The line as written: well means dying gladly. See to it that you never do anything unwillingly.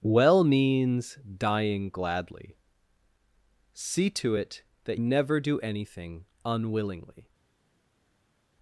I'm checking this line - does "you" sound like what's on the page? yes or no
no